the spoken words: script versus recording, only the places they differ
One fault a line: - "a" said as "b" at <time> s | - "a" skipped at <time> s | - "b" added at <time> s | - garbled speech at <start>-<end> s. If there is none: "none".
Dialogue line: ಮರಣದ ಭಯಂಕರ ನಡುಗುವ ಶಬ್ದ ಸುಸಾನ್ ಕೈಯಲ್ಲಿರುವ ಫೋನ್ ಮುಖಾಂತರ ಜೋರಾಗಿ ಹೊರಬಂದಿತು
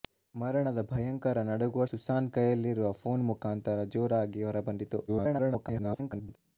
- "ಶಬ್ದ" skipped at 1.9 s
- garbled speech at 5.1-6.4 s